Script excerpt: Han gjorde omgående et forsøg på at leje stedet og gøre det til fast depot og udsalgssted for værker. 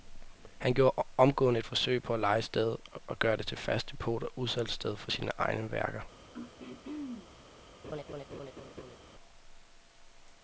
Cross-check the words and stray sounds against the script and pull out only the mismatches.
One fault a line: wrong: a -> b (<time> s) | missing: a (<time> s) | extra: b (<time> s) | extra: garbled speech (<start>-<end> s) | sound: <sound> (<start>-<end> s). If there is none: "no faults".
extra: sine egne (5.1 s)
sound: throat clearing (6.3-7.3 s)
sound: laugh (7.8-9.0 s)